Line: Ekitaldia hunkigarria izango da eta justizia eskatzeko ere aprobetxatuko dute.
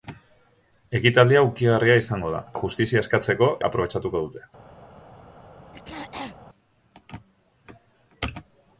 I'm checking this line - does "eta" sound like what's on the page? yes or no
no